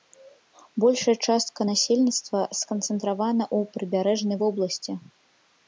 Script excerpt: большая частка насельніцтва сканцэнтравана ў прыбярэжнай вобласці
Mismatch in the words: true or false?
false